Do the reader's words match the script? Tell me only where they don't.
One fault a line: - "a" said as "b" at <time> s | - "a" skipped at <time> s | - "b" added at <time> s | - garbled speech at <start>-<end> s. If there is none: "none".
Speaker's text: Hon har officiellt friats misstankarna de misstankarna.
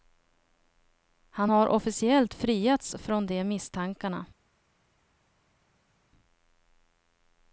- "Hon" said as "Han" at 1.3 s
- "misstankarna" said as "från" at 3.0 s